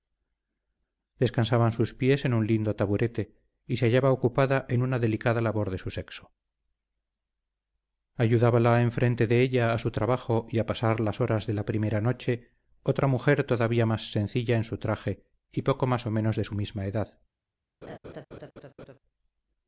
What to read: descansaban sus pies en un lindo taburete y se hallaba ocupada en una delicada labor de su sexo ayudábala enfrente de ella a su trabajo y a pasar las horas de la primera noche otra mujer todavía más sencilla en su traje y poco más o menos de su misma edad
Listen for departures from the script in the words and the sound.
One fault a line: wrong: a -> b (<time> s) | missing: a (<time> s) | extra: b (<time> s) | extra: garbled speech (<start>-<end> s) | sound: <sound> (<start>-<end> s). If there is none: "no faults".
sound: laugh (17.8-19.0 s)